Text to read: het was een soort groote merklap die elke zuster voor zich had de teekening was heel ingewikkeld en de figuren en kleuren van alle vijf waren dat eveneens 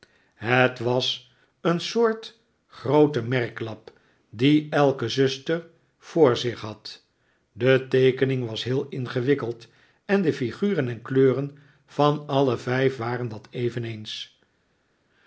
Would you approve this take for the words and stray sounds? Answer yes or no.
yes